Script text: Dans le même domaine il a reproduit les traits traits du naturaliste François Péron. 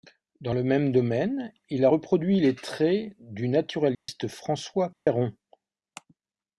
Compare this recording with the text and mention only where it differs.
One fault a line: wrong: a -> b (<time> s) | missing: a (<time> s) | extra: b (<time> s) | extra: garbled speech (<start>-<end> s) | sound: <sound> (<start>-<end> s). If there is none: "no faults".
missing: traits (3.1 s)
sound: dropout (3.9-4.1 s)
sound: dropout (4.9-5.1 s)